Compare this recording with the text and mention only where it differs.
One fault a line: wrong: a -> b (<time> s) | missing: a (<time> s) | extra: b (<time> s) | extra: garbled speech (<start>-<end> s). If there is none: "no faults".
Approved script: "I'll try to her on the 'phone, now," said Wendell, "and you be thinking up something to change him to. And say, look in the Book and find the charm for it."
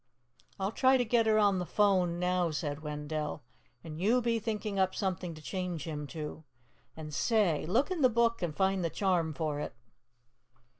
extra: get (1.0 s)